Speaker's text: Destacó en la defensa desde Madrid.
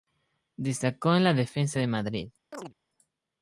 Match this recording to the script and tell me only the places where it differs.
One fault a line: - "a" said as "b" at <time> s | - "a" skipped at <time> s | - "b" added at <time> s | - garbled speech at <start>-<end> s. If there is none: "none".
- "desde" said as "de" at 1.8 s